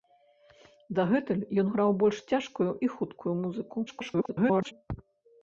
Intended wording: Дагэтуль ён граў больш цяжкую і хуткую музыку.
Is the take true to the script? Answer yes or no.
no